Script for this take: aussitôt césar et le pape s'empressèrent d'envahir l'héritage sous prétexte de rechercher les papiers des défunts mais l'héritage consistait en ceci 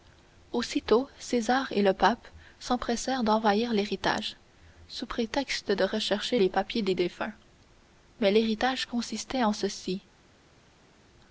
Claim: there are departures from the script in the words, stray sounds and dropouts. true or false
false